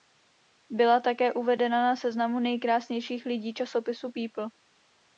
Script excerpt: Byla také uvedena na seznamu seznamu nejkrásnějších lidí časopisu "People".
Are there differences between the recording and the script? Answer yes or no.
yes